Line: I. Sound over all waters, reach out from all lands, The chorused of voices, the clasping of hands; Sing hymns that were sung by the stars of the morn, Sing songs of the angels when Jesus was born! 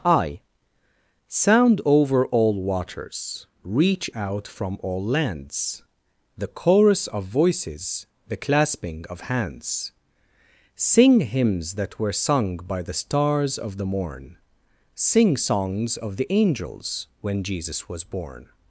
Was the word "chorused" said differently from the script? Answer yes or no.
yes